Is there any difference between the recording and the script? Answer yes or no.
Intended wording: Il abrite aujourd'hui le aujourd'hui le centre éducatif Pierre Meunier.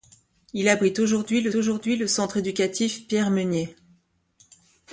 no